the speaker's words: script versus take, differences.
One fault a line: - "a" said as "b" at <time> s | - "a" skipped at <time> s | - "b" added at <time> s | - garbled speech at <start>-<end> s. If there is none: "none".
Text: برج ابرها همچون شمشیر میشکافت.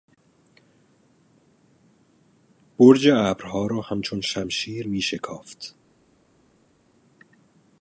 - "را" added at 3.7 s